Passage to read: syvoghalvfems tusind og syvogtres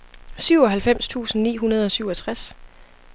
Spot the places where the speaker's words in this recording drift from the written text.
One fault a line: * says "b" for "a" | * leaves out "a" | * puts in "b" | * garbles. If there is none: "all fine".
* puts in "ni hundrede"